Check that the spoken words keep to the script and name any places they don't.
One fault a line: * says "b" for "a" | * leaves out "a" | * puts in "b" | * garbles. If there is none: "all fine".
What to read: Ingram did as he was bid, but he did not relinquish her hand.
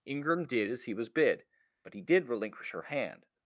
* leaves out "not"